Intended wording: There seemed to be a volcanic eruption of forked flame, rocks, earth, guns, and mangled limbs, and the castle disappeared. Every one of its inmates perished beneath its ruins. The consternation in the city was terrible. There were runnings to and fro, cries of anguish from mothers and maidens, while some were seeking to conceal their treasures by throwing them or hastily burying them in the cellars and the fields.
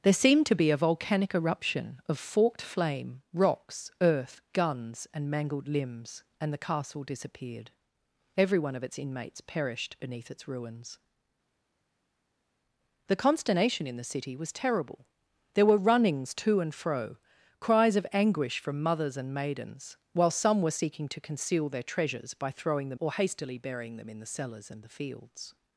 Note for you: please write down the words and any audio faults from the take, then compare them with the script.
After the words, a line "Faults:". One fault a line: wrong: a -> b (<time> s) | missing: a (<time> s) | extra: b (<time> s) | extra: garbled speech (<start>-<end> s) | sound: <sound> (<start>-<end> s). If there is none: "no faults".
There seemed to be a volcanic eruption of forked flame, rocks, earth, guns, and mangled limbs, and the castle disappeared. Every one of its inmates perished beneath its ruins. The consternation in the city was terrible. There were runnings to and fro, cries of anguish from mothers and maidens, while some were seeking to conceal their treasures by throwing them or hastily burying them in the cellars and the fields.
Faults:
no faults